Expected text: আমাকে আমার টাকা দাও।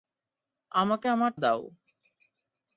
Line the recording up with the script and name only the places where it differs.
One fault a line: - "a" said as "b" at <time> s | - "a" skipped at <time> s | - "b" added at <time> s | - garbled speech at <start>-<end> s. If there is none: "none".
- "টাকা" skipped at 1.3 s